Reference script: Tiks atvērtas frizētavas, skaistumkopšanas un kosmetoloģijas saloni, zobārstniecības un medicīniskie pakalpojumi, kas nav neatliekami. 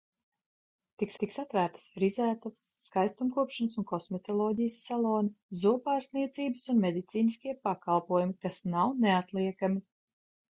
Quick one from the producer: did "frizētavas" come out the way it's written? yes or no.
yes